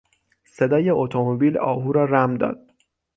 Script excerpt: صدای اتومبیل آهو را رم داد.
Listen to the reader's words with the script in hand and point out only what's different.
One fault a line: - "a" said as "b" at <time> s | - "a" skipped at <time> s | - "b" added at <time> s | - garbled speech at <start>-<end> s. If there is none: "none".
none